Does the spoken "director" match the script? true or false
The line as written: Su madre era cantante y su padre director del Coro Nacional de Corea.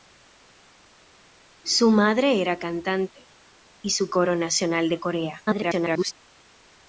false